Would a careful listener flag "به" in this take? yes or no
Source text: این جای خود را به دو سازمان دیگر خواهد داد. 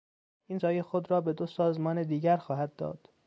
no